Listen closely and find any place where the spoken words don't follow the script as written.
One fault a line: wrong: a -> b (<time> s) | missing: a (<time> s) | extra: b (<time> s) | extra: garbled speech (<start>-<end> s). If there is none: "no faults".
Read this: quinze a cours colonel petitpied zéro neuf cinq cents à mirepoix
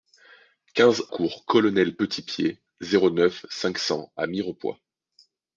missing: a (1.0 s)